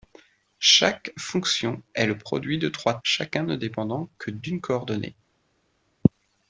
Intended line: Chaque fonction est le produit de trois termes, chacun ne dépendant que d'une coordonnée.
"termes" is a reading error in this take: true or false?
true